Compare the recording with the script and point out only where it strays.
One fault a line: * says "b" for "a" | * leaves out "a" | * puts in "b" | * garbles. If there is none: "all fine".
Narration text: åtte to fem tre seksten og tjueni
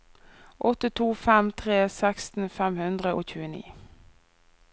* puts in "fem hundre"